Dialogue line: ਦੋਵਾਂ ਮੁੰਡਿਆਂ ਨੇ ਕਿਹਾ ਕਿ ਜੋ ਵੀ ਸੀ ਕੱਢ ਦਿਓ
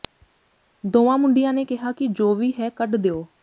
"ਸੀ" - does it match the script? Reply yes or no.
no